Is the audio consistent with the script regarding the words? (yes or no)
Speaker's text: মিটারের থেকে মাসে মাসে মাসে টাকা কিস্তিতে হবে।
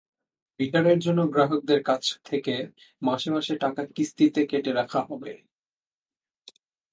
no